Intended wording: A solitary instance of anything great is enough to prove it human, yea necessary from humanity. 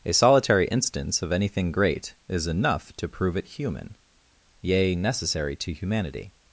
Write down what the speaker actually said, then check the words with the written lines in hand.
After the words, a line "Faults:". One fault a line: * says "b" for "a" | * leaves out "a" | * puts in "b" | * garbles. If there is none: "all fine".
A solitary instance of anything great is enough to prove it human, yea necessary to humanity.
Faults:
* says "to" for "from"